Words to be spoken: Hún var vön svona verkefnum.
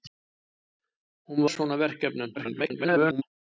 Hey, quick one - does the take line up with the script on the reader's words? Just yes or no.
no